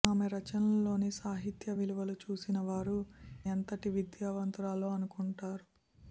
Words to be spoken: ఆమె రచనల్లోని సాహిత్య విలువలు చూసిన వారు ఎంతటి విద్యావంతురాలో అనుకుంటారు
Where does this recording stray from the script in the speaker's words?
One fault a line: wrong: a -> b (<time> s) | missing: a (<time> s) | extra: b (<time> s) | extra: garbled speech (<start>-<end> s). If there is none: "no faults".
no faults